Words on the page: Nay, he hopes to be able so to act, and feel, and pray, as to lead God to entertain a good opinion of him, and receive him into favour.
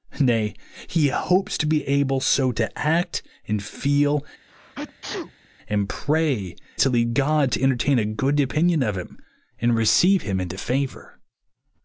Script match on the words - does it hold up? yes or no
no